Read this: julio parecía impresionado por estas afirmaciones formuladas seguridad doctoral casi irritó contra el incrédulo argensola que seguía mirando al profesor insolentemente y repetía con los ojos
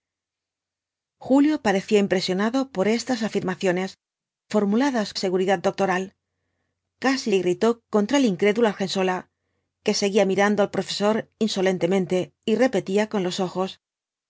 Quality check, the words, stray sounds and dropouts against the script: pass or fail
pass